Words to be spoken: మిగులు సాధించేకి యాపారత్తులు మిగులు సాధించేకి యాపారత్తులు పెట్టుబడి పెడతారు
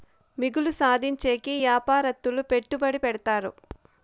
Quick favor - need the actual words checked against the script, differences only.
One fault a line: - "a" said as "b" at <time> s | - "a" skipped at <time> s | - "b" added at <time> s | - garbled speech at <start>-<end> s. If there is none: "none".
- "మిగులు సాధించేకి యాపారత్తులు" skipped at 2.4 s